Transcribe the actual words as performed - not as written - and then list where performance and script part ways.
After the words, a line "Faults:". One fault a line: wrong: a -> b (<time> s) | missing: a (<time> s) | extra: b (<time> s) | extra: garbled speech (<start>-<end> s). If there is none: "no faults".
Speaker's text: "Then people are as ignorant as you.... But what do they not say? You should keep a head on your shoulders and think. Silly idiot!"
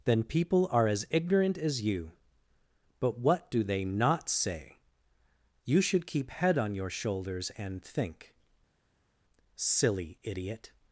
"Then people are as ignorant as you.... But what do they not say? You should keep head on your shoulders and think. Silly idiot!"
Faults:
missing: a (6.3 s)